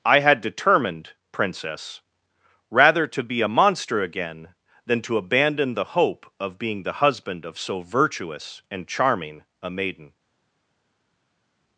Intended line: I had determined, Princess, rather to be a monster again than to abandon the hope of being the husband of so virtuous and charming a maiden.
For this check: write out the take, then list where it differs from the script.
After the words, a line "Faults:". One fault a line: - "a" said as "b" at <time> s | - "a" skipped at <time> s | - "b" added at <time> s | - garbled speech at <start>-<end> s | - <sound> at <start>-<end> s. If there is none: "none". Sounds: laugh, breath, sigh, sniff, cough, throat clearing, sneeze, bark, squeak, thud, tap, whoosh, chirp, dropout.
I had determined, Princess, rather to be a monster again than to abandon the hope of being the husband of so virtuous and charming a maiden.
Faults:
none